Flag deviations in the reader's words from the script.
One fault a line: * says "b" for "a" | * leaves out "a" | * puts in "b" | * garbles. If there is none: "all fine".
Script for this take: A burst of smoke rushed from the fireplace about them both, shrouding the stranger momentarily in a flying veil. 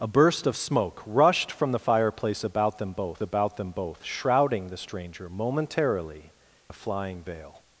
* puts in "about them both"
* leaves out "in"